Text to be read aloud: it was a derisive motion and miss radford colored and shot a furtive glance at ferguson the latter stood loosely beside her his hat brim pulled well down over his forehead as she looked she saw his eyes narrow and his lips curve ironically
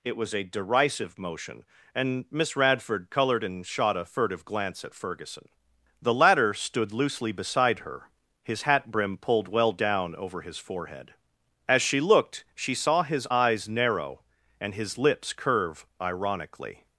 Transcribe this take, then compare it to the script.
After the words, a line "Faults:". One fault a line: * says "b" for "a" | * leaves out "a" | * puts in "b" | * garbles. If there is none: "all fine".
it was a derisive motion and miss radford colored and shot a furtive glance at ferguson the latter stood loosely beside her his hat brim pulled well down over his forehead as she looked she saw his eyes narrow and his lips curve ironically
Faults:
all fine